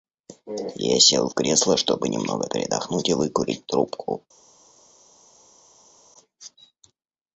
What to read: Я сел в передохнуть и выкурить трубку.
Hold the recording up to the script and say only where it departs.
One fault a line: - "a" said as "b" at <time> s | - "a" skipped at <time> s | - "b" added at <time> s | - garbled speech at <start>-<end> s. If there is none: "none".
- "кресло чтобы немного" added at 1.3 s